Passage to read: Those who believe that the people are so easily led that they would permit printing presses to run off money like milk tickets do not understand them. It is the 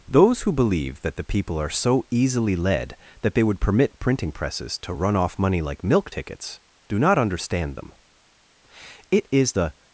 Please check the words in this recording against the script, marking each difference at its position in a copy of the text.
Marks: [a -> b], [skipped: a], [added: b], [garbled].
Those who believe that the people are so easily led that they would permit printing presses to run off money like milk tickets do not understand them. It is the